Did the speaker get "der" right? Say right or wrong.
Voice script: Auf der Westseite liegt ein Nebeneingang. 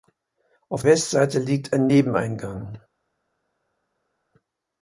wrong